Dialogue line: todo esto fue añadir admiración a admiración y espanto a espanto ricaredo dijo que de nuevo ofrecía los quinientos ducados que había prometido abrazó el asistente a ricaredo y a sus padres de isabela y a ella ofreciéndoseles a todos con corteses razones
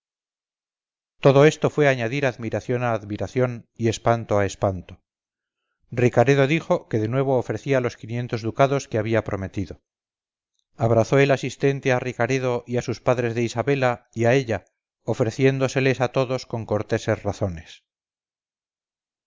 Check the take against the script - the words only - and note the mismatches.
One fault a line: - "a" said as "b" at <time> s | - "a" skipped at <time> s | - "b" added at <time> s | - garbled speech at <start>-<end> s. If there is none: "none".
none